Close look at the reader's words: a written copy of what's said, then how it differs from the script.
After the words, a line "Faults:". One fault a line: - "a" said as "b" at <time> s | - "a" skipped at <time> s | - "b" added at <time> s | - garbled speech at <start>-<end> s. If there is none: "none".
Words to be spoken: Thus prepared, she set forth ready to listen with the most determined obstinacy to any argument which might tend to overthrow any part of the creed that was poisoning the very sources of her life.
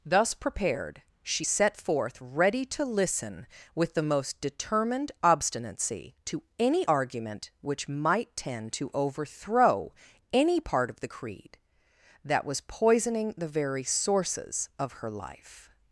Thus prepared, she set forth ready to listen with the most determined obstinacy to any argument which might tend to overthrow any part of the creed that was poisoning the very sources of her life.
Faults:
none